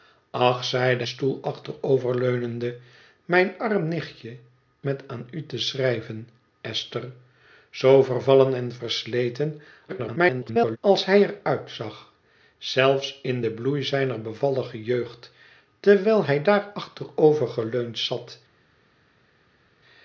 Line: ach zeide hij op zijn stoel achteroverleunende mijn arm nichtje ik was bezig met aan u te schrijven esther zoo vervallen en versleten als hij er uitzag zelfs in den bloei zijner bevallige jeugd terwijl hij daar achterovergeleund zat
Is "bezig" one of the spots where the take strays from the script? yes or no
yes